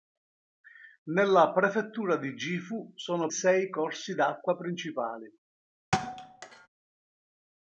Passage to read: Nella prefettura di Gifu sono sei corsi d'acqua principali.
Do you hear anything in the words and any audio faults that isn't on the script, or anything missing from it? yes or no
yes